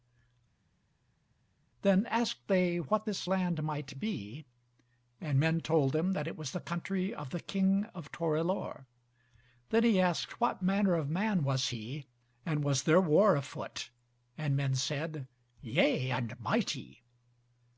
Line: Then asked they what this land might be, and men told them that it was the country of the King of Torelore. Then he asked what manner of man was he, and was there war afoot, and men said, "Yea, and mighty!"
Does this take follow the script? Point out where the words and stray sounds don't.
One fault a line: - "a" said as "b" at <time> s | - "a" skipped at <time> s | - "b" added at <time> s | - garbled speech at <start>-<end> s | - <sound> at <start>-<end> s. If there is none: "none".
none